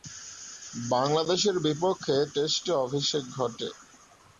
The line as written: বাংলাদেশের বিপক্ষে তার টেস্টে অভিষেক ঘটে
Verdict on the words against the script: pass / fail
fail